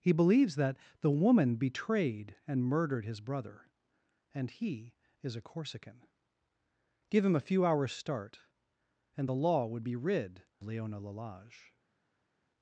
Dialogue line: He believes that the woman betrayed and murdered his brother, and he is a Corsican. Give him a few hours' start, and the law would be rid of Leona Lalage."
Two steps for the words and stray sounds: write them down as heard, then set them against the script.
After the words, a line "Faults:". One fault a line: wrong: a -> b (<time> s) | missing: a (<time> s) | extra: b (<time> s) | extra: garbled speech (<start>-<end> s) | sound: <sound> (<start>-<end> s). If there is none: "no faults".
He believes that the woman betrayed and murdered his brother, and he is a Corsican. Give him a few hours' start, and the law would be rid Leona Lalage."
Faults:
missing: of (10.4 s)